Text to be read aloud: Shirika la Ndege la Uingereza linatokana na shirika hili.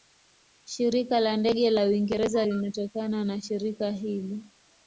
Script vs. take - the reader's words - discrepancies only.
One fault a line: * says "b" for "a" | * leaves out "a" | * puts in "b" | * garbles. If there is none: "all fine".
all fine